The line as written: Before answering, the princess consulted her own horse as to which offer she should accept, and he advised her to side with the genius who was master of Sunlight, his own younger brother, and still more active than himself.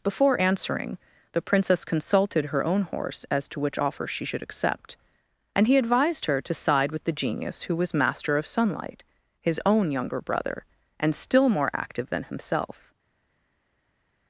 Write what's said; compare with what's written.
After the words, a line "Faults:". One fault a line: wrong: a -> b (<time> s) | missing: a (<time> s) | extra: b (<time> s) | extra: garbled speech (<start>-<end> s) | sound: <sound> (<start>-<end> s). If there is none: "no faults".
Before answering, the princess consulted her own horse as to which offer she should accept, and he advised her to side with the genius who was master of Sunlight, his own younger brother, and still more active than himself.
Faults:
no faults